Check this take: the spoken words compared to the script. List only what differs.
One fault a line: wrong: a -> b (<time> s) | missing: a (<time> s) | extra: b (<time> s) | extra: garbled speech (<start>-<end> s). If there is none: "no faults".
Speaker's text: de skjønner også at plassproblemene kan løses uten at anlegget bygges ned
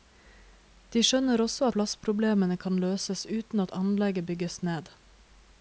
missing: at (1.7 s)